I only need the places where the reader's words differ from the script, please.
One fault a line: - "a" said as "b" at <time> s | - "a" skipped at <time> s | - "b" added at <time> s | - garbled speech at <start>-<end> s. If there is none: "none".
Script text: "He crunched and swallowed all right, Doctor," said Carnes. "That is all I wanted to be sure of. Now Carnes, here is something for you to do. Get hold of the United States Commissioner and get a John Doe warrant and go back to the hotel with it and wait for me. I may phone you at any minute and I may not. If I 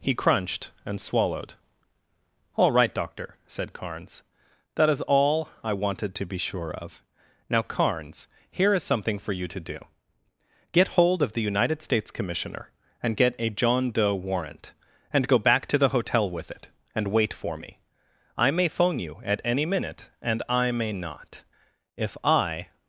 none